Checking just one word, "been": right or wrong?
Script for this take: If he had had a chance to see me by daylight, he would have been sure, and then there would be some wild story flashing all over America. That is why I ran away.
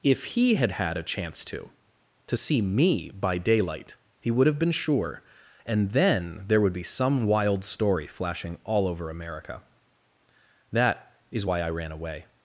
right